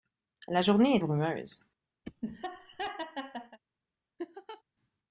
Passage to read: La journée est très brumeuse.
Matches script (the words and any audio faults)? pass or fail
fail